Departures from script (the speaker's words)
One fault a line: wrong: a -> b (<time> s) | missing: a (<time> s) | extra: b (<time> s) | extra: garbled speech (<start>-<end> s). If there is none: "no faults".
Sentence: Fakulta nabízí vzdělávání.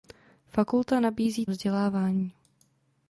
no faults